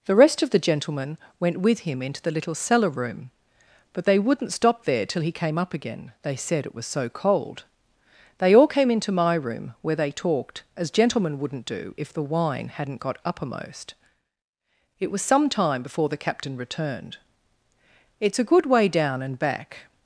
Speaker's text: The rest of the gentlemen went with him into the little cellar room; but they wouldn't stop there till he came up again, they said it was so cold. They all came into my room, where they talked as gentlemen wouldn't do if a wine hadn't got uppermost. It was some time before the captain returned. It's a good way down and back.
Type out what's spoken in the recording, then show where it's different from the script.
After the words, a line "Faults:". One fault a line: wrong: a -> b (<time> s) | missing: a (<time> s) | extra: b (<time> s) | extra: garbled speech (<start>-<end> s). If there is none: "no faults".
The rest of the gentlemen went with him into the little cellar room; but they wouldn't stop there till he came up again, they said it was so cold. They all came into my room, where they talked as gentlemen wouldn't do if the wine hadn't got uppermost. It was some time before the captain returned. It's a good way down and back.
Faults:
wrong: a -> the (12.1 s)